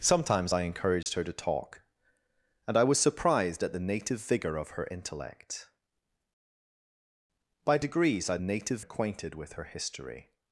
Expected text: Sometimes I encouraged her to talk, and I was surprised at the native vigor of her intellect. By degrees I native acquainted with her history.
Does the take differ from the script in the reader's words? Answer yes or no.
no